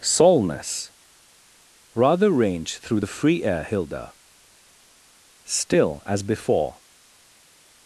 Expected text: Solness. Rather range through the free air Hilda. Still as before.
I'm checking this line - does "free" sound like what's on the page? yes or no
yes